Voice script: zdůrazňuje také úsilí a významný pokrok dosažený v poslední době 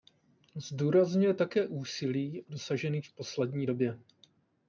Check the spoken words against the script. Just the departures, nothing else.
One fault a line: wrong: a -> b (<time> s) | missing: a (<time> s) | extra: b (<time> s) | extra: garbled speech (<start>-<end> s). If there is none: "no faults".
missing: a významný pokrok (2.4 s)